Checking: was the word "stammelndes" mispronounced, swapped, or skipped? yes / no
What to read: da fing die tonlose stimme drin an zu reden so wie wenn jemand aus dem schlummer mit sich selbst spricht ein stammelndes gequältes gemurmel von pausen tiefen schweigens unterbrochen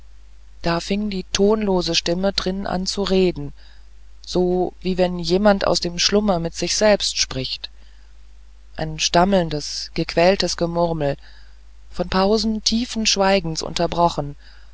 no